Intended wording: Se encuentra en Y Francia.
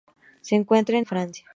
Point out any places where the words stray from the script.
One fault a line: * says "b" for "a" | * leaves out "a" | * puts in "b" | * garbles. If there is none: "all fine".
all fine